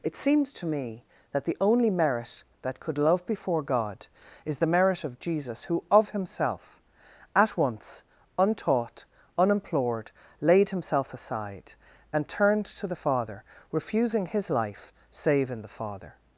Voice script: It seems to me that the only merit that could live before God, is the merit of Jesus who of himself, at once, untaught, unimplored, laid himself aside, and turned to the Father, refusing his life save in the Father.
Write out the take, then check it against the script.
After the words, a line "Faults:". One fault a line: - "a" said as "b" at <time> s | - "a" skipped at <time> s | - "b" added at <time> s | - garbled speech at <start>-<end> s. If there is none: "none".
It seems to me that the only merit that could love before God, is the merit of Jesus who of himself, at once, untaught, unimplored, laid himself aside, and turned to the Father, refusing his life save in the Father.
Faults:
- "live" said as "love" at 3.0 s